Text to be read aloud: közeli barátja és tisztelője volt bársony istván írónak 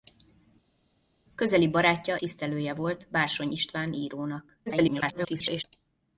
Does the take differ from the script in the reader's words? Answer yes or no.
yes